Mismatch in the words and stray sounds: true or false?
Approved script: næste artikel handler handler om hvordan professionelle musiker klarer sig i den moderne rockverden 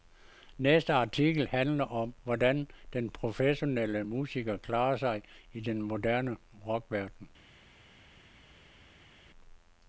true